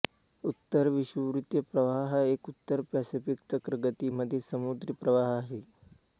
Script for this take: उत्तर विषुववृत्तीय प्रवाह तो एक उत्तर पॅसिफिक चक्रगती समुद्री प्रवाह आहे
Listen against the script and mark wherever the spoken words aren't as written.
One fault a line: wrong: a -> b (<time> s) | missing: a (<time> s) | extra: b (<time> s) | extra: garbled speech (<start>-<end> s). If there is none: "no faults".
wrong: तो -> हा (2.1 s)
extra: मधील (4.1 s)